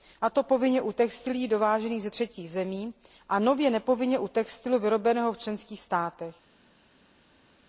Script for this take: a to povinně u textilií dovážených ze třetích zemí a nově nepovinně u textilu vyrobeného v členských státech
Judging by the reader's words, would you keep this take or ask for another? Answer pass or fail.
pass